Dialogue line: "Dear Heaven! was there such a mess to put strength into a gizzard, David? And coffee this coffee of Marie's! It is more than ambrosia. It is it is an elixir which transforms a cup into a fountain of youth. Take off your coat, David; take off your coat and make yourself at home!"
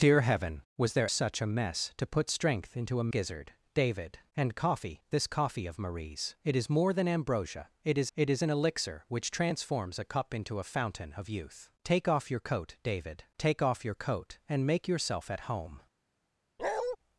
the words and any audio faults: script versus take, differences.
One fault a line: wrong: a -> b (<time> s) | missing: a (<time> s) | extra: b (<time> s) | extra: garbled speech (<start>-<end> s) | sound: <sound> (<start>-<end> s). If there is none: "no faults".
sound: bark (16.6-17.0 s)